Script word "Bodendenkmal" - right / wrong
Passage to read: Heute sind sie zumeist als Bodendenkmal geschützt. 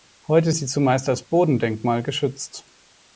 right